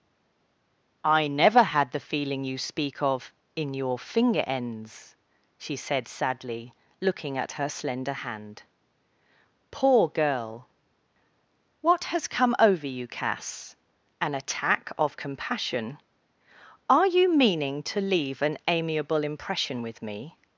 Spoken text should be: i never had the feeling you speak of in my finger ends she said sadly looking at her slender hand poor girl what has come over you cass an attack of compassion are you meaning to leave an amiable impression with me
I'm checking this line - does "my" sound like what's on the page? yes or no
no